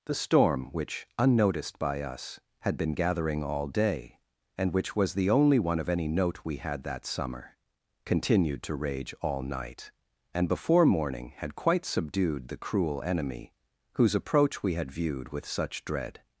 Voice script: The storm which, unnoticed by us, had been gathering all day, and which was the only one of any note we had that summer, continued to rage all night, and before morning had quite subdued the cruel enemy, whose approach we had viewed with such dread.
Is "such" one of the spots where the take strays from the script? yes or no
no